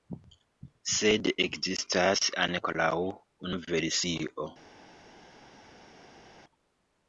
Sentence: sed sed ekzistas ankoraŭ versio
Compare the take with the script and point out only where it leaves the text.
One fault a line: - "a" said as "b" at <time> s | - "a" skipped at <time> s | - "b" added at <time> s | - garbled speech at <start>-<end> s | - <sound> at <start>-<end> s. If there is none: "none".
- "sed" skipped at 1.3 s
- "unu" added at 3.5 s